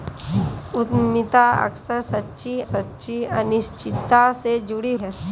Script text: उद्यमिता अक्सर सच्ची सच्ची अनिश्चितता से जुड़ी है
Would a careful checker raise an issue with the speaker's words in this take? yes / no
no